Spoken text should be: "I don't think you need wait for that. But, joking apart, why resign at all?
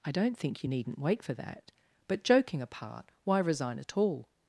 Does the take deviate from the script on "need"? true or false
true